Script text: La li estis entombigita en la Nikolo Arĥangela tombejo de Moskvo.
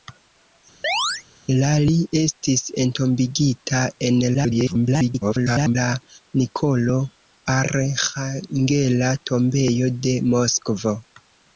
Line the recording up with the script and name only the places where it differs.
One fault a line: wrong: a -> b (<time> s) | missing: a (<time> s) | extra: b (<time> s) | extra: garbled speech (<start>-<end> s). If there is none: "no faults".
extra: garbled speech (4.3-5.8 s)